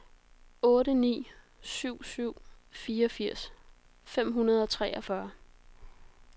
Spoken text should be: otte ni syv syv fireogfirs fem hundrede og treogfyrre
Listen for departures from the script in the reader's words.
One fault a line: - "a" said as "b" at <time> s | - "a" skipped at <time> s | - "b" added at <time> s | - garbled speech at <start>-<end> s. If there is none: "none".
none